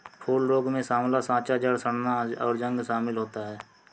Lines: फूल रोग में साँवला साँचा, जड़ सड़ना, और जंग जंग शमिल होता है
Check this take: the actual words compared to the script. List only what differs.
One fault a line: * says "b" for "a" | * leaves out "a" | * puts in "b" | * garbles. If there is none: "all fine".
* leaves out "जंग"